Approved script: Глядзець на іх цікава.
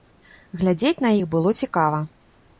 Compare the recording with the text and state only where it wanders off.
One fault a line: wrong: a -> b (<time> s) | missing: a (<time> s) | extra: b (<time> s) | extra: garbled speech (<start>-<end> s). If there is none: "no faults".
extra: было (1.3 s)